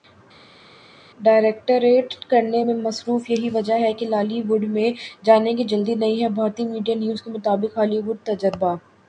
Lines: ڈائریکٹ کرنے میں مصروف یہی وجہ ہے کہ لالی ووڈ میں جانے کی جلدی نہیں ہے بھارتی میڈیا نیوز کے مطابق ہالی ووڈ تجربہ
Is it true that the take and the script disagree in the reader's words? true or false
false